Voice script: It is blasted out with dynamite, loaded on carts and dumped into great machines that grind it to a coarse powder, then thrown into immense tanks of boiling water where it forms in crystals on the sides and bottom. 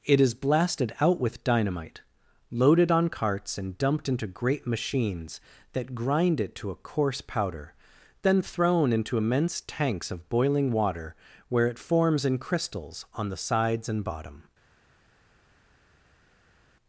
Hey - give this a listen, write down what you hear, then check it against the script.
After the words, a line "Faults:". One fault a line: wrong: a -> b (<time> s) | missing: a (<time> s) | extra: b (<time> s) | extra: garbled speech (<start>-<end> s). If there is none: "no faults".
It is blasted out with dynamite, loaded on carts and dumped into great machines that grind it to a coarse powder, then thrown into immense tanks of boiling water where it forms in crystals on the sides and bottom.
Faults:
no faults